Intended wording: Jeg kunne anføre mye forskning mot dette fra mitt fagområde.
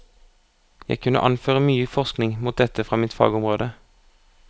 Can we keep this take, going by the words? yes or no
yes